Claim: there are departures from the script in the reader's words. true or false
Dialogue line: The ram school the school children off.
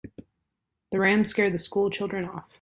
true